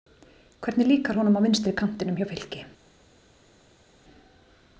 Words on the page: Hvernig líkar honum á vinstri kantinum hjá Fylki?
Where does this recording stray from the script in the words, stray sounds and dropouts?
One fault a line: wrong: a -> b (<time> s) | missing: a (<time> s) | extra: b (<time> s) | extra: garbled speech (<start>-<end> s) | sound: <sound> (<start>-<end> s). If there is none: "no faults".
no faults